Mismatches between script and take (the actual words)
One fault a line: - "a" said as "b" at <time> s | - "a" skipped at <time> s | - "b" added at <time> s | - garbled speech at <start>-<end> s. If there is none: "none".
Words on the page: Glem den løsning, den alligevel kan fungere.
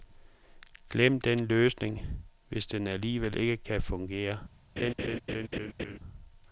- "hvis" added at 2.5 s
- "ikke" added at 3.4 s